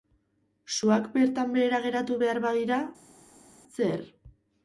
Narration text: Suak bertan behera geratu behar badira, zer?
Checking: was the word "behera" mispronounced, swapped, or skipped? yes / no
no